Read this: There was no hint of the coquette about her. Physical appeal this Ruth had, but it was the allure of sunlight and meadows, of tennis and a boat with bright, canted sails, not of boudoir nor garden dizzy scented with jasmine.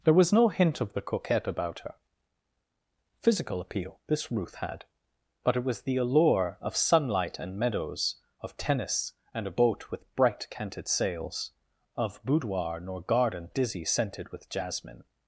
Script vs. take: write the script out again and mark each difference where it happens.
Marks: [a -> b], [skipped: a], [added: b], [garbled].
There was no hint of the coquette about her. Physical appeal this Ruth had, but it was the allure of sunlight and meadows, of tennis and a boat with bright, canted sails, [skipped: not] of boudoir nor garden dizzy scented with jasmine.